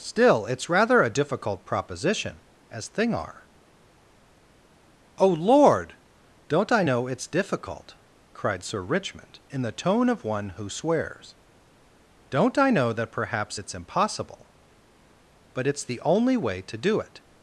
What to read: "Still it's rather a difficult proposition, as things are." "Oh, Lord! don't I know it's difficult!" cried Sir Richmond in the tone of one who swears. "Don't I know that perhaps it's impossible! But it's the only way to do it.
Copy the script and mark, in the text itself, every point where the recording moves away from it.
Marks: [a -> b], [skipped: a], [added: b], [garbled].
"Still it's rather a difficult proposition, as [things -> thing] are." "Oh, Lord! don't I know it's difficult!" cried Sir Richmond in the tone of one who swears. "Don't I know that perhaps it's impossible! But it's the only way to do it.